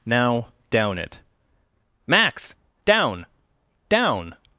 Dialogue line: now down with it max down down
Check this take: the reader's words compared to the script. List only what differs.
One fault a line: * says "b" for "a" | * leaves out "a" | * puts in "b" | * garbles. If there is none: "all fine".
* leaves out "with"